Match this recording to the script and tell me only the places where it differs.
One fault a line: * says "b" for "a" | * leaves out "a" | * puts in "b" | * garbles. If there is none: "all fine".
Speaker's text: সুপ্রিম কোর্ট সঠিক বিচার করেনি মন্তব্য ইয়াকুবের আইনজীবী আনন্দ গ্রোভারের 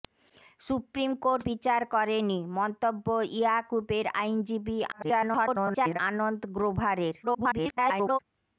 * leaves out "সঠিক"
* garbles
* garbles